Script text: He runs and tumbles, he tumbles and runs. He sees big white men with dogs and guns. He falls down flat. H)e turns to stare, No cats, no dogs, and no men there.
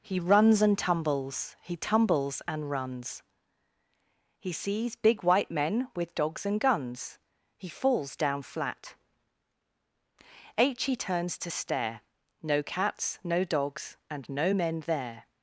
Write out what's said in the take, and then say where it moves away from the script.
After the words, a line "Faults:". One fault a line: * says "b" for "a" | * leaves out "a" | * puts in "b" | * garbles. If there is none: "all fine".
He runs and tumbles, he tumbles and runs. He sees big white men with dogs and guns. He falls down flat. h H)e turns to stare, No cats, no dogs, and no men there.
Faults:
* puts in "h"